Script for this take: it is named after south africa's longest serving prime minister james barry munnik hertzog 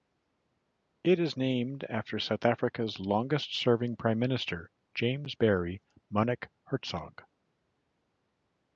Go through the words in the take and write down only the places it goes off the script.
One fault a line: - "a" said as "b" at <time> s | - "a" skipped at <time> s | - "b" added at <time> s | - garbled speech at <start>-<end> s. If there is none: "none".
none